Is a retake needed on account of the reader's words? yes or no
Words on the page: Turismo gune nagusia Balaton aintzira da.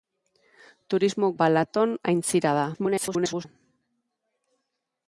yes